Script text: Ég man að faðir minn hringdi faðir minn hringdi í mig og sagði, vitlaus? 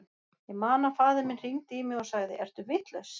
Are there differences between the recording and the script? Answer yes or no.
yes